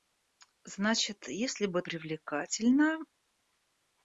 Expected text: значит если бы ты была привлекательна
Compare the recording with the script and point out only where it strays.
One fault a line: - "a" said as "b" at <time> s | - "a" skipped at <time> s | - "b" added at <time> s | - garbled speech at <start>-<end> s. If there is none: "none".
- "ты была" skipped at 1.8 s